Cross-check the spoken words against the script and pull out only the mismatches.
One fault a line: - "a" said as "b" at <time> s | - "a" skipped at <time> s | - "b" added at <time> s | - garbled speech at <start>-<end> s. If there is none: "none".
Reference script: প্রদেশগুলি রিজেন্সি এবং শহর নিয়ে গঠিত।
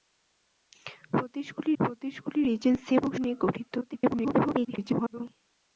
- "প্রদেশগুলি" added at 1.8 s
- "শহর" skipped at 3.1 s
- garbled speech at 3.8-5.2 s